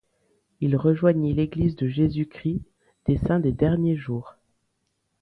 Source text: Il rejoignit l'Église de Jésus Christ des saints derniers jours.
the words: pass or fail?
fail